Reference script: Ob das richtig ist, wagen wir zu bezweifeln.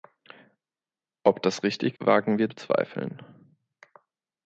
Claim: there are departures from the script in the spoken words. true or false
true